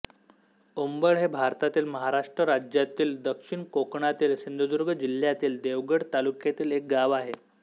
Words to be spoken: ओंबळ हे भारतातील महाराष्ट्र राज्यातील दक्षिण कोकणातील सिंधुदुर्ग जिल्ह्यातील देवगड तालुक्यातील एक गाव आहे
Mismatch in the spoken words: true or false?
false